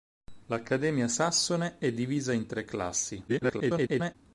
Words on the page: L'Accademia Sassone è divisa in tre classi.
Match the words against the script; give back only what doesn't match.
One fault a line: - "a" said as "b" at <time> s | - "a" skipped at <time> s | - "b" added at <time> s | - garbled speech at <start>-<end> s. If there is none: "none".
- garbled speech at 3.3-4.1 s